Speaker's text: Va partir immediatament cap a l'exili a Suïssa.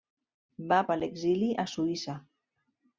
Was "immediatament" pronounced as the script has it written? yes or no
no